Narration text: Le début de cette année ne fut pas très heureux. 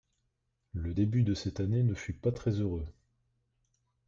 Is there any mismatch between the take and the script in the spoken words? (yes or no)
no